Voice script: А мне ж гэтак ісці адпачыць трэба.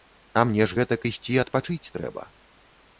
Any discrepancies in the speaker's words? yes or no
no